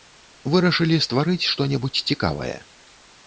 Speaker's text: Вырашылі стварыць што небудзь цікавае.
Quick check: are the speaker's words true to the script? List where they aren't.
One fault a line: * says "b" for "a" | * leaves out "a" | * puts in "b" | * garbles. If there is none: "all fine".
all fine